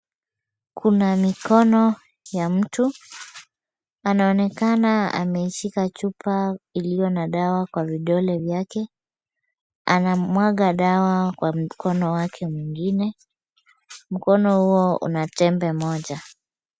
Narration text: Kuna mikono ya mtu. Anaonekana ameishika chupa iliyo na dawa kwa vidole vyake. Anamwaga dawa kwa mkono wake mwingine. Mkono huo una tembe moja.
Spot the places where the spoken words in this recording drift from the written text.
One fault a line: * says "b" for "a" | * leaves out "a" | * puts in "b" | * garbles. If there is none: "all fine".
all fine